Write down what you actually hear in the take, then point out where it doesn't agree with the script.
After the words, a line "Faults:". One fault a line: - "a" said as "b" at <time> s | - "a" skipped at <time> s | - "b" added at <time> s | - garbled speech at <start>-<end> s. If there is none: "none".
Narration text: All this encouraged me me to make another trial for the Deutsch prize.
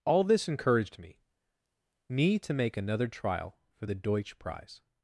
All this encouraged me me to make another trial for the Deutsch prize.
Faults:
none